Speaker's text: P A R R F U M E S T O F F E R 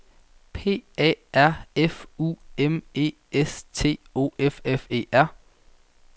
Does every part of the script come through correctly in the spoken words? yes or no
no